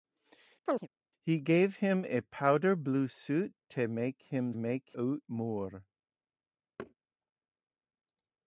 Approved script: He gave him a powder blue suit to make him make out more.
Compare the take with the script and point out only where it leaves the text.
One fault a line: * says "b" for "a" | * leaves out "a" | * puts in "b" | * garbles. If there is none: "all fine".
all fine